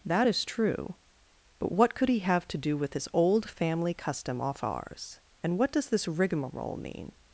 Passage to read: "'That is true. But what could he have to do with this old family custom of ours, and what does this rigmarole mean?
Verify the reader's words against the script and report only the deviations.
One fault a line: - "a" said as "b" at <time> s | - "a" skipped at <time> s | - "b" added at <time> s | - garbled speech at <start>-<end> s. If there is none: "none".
- "of" said as "off" at 4.4 s